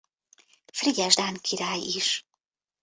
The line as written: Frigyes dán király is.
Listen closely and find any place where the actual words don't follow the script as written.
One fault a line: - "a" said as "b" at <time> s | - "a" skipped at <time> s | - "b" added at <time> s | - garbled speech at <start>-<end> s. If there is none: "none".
none